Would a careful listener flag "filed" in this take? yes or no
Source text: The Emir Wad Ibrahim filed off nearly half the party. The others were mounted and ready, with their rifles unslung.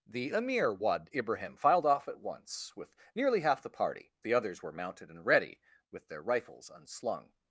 no